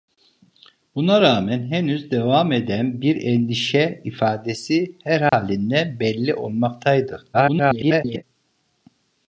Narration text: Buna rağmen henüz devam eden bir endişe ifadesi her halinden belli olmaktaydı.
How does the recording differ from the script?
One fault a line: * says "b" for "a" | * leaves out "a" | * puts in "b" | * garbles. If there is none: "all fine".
* garbles